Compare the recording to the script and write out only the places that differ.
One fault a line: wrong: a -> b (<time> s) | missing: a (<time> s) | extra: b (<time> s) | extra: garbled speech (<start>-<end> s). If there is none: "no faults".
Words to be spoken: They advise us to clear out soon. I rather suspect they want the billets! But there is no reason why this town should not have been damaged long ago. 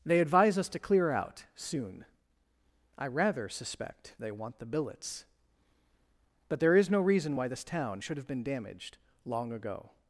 missing: not (8.2 s)